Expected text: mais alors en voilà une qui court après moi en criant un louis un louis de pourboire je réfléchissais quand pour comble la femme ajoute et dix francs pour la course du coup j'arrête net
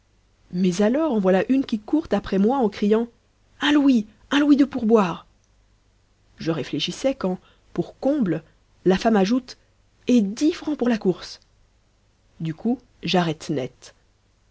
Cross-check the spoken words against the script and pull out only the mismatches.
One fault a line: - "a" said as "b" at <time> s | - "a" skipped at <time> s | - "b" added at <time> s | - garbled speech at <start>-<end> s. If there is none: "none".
none